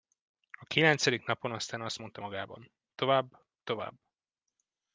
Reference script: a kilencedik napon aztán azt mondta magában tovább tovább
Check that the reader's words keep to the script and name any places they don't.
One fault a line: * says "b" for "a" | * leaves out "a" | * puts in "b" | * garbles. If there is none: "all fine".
all fine